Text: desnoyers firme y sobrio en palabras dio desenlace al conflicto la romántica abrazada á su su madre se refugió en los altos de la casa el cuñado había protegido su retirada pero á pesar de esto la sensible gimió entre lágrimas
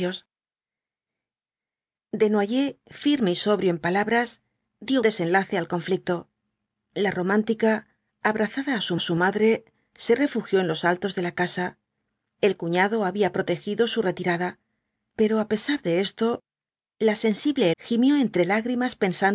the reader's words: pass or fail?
pass